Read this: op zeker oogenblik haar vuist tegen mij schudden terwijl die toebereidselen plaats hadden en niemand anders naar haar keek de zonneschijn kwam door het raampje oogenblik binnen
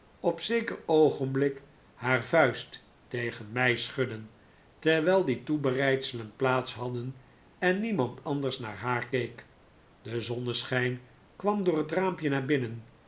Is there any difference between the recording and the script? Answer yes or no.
yes